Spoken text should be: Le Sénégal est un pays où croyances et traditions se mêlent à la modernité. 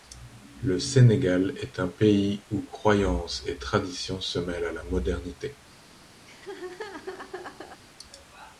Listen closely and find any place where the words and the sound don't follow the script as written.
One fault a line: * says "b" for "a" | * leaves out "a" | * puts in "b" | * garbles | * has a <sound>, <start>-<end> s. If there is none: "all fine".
* has a laugh, 6.2-7.8 s